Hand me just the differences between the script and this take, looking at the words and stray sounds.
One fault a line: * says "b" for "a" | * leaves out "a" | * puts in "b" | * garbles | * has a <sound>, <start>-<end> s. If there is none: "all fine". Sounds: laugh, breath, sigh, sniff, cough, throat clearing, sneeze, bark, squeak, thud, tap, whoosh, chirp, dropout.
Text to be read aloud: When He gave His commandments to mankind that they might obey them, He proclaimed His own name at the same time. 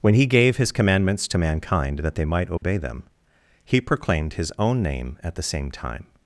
* has a dropout, 2.6-2.6 s